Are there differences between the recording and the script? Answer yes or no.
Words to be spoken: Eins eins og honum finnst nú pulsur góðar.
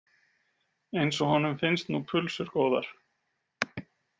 yes